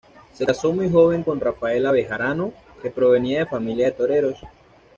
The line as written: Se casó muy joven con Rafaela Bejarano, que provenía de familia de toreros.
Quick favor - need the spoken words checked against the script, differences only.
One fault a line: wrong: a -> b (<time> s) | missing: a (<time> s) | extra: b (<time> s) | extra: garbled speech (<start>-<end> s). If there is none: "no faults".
no faults